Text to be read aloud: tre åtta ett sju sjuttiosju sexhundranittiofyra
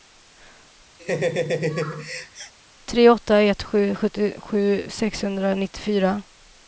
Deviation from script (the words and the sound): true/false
true